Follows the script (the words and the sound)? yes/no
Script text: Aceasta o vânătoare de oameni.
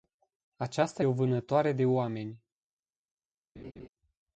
no